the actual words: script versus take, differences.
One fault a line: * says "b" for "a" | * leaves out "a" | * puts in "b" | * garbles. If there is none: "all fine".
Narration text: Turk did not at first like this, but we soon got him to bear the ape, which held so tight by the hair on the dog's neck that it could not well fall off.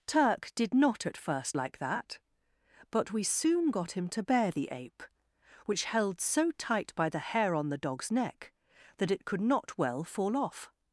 * says "that" for "this"